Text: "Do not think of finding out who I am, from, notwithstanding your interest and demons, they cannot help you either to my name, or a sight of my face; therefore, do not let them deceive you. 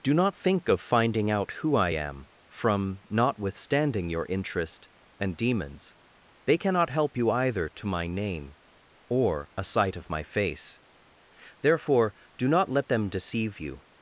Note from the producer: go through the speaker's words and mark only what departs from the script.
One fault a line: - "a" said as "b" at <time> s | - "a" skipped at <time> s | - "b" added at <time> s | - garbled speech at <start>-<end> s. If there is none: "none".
none